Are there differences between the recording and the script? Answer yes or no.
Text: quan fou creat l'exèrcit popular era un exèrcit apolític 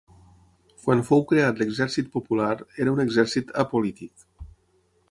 no